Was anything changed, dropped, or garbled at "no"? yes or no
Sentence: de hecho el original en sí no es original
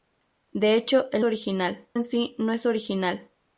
no